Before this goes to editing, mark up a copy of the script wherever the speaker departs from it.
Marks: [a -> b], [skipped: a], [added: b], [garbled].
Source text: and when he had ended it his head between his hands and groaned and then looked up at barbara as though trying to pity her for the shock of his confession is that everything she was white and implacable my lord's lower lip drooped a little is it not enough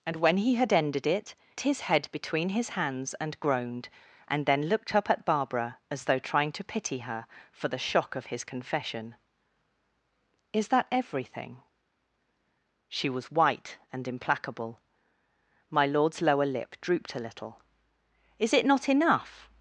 and when he had ended it his head between his hands and groaned and then looked up at barbara as though trying to pity her for the shock of his confession is that everything she was white and implacable my lord's lower lip drooped a little is it not enough